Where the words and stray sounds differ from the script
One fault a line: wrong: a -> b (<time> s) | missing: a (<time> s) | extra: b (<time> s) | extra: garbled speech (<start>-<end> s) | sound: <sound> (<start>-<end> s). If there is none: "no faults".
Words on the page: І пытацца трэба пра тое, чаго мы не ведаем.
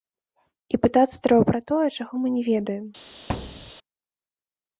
sound: thud (3.3-3.7 s)